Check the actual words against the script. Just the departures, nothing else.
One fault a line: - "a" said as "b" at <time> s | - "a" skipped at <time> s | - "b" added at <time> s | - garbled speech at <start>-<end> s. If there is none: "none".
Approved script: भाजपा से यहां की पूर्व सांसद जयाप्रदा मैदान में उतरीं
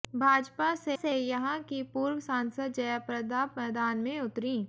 - "से" added at 0.9 s